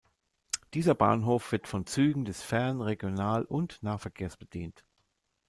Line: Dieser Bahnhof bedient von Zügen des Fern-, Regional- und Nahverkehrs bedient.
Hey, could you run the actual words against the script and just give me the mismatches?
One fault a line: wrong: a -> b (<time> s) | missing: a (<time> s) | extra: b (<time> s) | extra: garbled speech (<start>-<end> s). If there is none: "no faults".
wrong: bedient -> wird (1.5 s)